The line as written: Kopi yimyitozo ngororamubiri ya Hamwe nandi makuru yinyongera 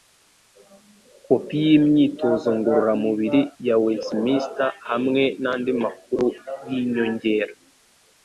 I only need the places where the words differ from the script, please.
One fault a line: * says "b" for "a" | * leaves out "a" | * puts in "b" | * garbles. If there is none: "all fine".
* puts in "Westminster"